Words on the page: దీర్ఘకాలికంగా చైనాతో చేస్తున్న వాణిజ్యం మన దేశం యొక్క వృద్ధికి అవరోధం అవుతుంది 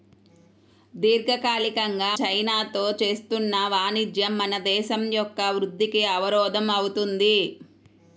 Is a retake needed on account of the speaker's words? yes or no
no